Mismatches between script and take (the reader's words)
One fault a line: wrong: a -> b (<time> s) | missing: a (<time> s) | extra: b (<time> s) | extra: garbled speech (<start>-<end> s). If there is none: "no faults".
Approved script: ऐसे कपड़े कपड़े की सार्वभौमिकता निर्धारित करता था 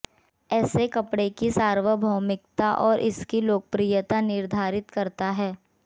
missing: कपड़े (1.3 s)
extra: और इसकी लोकप्रियता (2.8 s)
wrong: था -> है (5.3 s)